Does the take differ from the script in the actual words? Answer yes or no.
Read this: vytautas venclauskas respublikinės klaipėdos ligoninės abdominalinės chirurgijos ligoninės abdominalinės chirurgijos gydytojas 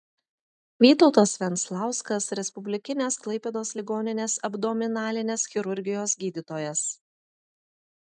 yes